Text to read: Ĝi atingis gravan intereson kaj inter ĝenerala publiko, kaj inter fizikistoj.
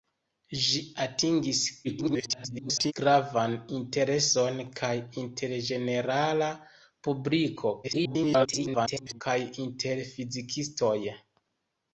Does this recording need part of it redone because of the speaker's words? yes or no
yes